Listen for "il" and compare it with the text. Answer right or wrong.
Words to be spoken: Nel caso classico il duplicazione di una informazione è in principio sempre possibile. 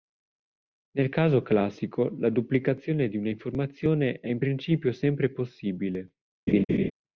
wrong